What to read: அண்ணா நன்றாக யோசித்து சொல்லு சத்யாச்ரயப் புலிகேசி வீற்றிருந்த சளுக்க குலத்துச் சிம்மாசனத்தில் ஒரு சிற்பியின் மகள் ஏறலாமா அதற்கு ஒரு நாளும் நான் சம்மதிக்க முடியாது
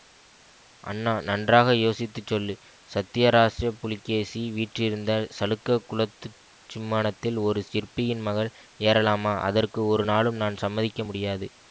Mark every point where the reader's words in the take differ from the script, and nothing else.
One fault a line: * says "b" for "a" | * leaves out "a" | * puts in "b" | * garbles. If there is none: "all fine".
all fine